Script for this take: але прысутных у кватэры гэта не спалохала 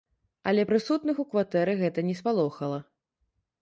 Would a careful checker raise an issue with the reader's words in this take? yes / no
no